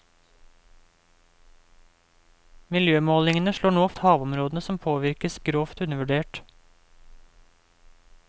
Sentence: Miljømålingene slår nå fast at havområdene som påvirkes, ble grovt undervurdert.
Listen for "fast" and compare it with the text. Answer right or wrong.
wrong